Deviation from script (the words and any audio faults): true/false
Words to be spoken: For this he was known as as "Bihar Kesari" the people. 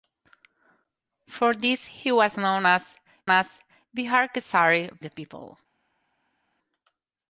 false